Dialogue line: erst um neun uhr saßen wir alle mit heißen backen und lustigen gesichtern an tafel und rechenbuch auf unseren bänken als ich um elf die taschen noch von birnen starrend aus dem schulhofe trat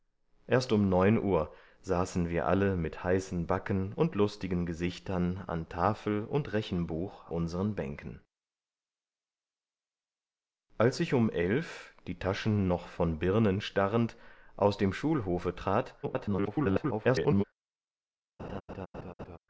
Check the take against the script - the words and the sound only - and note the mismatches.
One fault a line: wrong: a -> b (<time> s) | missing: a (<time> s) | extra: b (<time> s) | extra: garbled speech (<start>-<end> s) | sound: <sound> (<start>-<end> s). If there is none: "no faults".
missing: auf (7.3 s)
extra: garbled speech (16.0-17.4 s)
sound: laugh (18.4-19.4 s)